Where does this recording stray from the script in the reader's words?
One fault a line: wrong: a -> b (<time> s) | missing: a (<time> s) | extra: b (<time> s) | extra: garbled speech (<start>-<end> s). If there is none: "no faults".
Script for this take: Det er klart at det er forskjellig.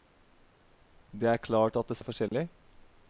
no faults